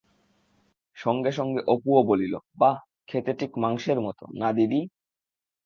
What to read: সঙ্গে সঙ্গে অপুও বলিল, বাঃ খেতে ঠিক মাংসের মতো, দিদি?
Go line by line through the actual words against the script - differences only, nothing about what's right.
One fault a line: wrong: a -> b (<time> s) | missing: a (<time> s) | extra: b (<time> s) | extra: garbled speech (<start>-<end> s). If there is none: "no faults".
extra: না (4.3 s)